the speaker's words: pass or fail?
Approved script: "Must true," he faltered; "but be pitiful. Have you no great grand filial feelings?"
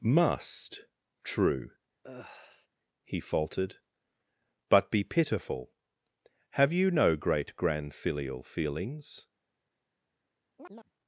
pass